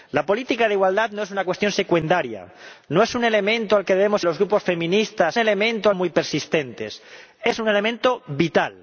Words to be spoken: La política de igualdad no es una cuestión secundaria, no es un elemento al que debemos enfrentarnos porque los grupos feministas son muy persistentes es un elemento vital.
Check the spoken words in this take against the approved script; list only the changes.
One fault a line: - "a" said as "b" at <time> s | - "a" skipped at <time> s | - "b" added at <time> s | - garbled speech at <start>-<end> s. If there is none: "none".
- "enfrentarnos porque" skipped at 4.2 s
- "son" said as "elemento" at 5.4 s